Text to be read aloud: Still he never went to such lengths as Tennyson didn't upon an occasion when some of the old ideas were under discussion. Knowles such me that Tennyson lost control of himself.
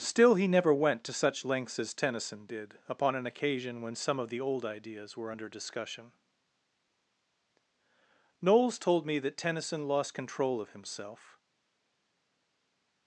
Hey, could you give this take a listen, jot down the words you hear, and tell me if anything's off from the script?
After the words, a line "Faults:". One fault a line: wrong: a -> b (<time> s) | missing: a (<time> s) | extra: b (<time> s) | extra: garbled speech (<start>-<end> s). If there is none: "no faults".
Still he never went to such lengths as Tennyson did upon an occasion when some of the old ideas were under discussion. Knowles told me that Tennyson lost control of himself.
Faults:
wrong: didn't -> did (2.5 s)
wrong: such -> told (8.8 s)